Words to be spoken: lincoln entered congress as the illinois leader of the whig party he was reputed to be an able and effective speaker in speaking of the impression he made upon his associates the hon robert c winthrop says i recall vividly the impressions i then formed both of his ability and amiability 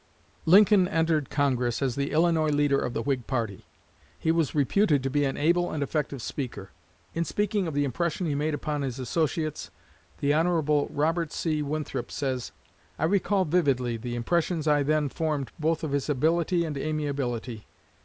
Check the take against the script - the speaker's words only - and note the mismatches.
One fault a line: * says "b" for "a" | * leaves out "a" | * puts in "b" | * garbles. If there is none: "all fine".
all fine